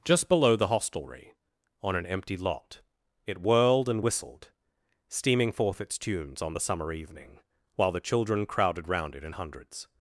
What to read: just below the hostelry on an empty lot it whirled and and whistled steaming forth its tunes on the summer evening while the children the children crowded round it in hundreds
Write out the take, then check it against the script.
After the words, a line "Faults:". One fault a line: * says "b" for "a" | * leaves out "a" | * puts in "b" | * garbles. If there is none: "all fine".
just below the hostelry on an empty lot it whirled and whistled steaming forth its tunes on the summer evening while the children crowded round it in hundreds
Faults:
* leaves out "and"
* leaves out "the children"